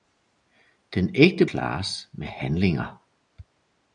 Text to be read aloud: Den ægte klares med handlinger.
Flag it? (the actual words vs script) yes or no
no